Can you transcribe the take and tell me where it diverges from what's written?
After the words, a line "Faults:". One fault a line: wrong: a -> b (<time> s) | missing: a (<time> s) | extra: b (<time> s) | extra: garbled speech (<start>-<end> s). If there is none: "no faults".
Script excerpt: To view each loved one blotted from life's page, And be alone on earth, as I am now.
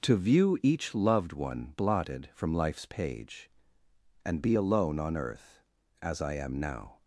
To view each loved one blotted from life's page, And be alone on earth, as I am now.
Faults:
no faults